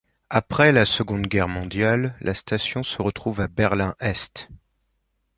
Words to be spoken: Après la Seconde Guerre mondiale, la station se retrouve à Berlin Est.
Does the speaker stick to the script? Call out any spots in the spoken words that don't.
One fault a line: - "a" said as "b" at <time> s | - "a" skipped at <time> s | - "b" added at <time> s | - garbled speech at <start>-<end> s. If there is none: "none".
none